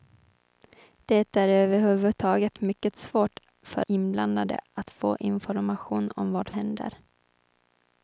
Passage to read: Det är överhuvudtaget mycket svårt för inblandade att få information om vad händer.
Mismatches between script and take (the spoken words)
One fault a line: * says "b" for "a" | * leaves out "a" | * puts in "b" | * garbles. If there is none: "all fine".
all fine